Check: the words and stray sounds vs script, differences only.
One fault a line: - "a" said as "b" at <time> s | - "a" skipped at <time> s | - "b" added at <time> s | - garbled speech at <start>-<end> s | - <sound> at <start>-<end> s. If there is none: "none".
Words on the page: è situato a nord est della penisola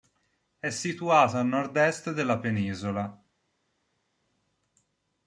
none